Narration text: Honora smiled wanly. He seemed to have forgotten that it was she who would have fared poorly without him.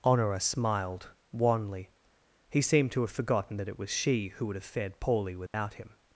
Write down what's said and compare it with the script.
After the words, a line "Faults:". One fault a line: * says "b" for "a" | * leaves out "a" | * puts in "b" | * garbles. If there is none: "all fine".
Honora smiled wanly. He seemed to have forgotten that it was she who would have fared poorly without him.
Faults:
all fine